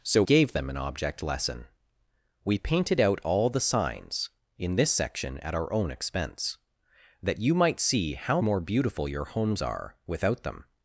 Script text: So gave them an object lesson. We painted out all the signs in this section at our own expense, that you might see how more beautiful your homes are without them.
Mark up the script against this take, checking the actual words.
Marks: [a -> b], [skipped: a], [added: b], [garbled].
So gave them an object lesson. We painted out all the signs in this section at our own expense, that you might see how more beautiful your homes are without them.